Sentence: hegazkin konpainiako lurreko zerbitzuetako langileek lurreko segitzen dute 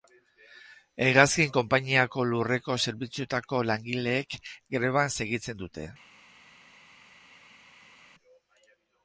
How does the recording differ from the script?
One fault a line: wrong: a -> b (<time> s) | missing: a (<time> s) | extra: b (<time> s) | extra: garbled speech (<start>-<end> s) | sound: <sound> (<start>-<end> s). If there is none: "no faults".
wrong: lurreko -> greban (4.8 s)